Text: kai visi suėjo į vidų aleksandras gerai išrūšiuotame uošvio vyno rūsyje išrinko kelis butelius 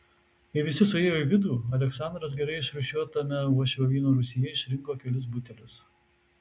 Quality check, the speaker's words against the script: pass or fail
pass